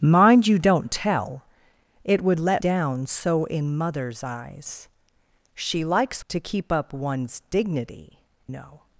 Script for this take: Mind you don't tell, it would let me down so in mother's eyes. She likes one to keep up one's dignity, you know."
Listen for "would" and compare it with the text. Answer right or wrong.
right